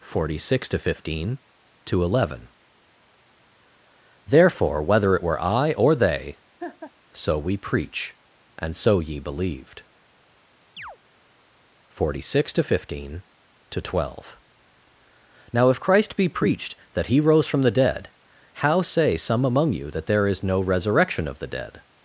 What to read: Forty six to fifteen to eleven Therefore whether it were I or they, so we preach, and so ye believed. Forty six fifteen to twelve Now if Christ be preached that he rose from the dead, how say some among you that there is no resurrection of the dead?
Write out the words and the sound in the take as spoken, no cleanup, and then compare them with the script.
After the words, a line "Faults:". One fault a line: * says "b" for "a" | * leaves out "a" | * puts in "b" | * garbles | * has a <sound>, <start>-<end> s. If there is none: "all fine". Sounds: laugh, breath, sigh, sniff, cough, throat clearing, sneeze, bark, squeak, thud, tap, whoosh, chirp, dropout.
Forty six to fifteen to eleven Therefore whether it were I or they, so we preach, and so ye believed. Forty six to fifteen to twelve Now if Christ be preached that he rose from the dead, how say some among you that there is no resurrection of the dead?
Faults:
* has a laugh, 6.6-6.9 s
* has a chirp, 10.8-11.0 s
* puts in "to"